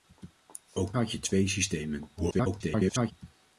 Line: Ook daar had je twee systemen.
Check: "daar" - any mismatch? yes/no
yes